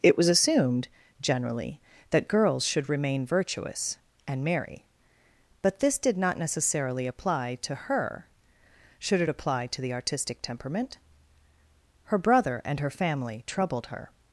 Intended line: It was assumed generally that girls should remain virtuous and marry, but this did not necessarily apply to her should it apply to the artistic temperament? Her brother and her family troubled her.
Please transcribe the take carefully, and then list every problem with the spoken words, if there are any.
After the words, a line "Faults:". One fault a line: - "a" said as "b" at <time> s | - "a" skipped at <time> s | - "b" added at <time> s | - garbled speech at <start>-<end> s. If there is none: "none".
It was assumed generally that girls should remain virtuous and marry, but this did not necessarily apply to her should it apply to the artistic temperament? Her brother and her family troubled her.
Faults:
none